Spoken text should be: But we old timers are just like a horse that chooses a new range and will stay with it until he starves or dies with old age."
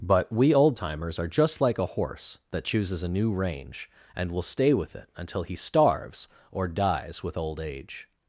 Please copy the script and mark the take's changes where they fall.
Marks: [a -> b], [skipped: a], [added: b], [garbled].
But we old timers are just like a horse that chooses a new range and will stay with it until he starves or dies with old age."